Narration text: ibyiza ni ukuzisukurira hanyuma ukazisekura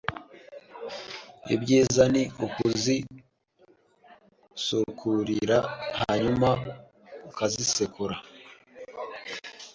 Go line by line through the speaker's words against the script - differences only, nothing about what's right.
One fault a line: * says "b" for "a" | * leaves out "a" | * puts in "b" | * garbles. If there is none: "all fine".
all fine